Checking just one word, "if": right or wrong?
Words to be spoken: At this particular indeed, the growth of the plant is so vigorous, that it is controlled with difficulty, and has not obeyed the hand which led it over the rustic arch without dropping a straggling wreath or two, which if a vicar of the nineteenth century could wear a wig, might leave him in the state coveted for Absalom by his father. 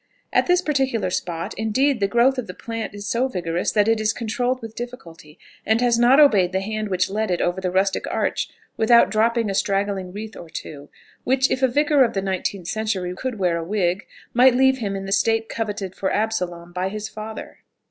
right